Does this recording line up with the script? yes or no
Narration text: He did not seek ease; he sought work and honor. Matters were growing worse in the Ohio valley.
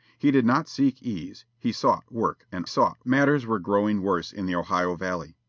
no